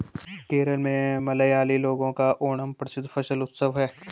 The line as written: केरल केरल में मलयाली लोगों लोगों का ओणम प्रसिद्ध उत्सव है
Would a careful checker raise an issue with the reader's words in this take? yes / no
yes